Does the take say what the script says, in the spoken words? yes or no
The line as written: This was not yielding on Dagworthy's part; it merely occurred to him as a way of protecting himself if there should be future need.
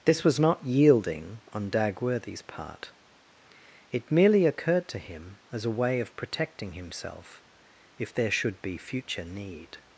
yes